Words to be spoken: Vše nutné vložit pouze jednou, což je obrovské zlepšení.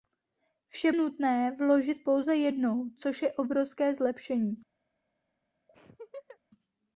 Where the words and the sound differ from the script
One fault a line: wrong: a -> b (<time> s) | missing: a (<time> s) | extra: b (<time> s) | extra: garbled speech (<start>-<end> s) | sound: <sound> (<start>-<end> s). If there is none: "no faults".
sound: laugh (5.7-6.4 s)